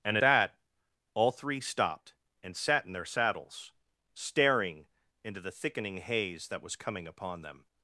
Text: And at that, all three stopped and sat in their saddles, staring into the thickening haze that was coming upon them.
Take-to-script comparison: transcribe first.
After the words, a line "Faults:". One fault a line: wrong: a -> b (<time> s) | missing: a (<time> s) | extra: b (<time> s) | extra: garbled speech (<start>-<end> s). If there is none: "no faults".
And that, all three stopped and sat in their saddles, staring into the thickening haze that was coming upon them.
Faults:
missing: at (0.2 s)